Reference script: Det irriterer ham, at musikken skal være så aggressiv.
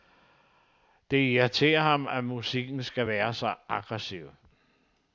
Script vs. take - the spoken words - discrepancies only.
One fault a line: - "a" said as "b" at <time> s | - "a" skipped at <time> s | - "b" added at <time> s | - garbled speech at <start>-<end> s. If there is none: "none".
none